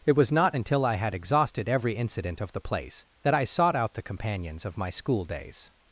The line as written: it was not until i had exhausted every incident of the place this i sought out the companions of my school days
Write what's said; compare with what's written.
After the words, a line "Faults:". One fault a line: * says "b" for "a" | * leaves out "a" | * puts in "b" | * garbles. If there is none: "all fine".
it was not until i had exhausted every incident of the place that i sought out the companions of my school days
Faults:
* says "that" for "this"